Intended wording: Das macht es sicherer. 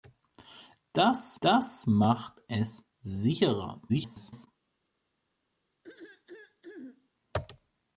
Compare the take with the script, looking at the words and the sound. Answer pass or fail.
fail